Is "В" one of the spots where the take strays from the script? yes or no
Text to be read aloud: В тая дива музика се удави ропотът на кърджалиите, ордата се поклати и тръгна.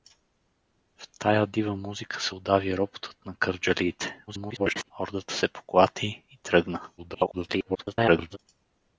no